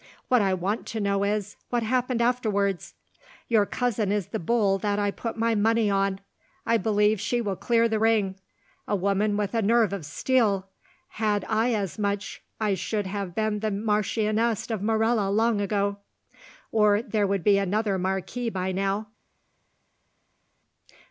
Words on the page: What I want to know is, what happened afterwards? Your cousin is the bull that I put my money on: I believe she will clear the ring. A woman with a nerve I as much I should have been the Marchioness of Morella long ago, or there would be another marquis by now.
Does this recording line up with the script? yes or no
no